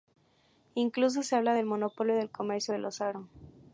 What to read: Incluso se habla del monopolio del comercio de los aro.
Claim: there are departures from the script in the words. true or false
false